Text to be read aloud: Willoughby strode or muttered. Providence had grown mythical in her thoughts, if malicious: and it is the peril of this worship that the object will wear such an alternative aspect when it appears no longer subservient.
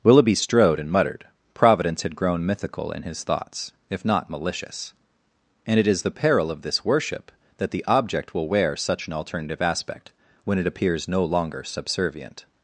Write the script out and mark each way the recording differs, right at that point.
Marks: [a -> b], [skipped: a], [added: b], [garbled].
Willoughby strode [or -> and] muttered. Providence had grown mythical in [her -> his] thoughts, if [added: not] malicious: and it is the peril of this worship that the object will wear such an alternative aspect when it appears no longer subservient.